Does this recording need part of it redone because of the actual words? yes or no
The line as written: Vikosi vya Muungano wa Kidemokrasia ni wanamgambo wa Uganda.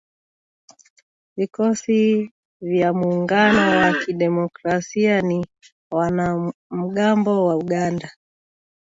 no